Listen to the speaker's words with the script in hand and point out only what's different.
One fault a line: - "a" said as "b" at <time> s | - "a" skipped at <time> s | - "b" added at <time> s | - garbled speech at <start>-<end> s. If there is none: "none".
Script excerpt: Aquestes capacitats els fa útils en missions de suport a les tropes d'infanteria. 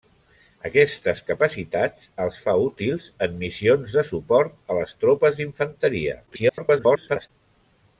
- garbled speech at 6.3-7.3 s